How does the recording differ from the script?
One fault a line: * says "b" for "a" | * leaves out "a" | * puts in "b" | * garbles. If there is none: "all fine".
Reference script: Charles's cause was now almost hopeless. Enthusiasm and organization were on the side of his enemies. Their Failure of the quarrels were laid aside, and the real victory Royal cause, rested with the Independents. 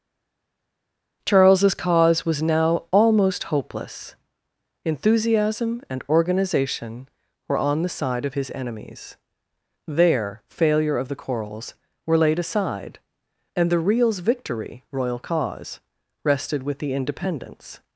* says "reals" for "real"